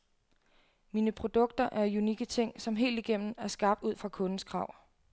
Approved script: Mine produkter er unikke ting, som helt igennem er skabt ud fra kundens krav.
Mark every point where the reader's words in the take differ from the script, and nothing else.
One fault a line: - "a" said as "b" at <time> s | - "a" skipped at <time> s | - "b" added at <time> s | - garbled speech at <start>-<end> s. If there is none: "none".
none